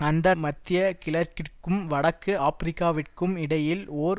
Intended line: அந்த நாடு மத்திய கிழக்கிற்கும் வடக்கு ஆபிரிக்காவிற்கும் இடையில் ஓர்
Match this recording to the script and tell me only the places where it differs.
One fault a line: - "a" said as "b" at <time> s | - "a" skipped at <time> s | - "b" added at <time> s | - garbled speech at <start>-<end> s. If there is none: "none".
- "நாடு" skipped at 0.3 s